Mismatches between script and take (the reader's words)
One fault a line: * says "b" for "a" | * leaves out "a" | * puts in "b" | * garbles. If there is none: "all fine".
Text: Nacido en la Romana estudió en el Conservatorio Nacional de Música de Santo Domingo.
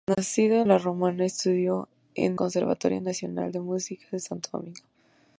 * leaves out "en"
* leaves out "el"